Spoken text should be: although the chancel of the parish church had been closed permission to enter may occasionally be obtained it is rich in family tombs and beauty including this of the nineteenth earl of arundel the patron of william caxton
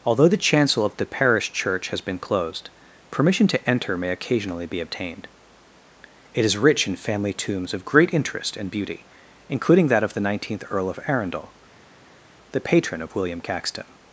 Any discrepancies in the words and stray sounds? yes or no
yes